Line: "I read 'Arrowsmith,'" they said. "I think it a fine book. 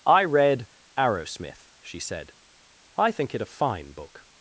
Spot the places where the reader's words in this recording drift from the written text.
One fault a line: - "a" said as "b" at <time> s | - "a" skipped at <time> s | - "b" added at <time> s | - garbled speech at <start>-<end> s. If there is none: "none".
- "they" said as "she" at 1.8 s